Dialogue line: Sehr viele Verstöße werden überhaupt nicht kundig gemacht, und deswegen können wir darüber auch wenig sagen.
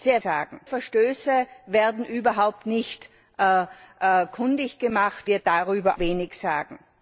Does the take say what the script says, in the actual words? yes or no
no